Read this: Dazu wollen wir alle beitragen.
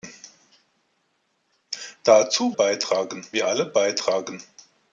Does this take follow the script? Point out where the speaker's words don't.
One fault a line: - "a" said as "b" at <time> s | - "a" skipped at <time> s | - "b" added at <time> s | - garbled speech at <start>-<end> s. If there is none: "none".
- "wollen" said as "beitragen" at 2.5 s